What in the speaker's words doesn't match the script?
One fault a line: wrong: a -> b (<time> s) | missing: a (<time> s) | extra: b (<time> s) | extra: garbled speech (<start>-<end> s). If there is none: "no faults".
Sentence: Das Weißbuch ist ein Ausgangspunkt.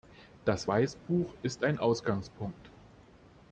no faults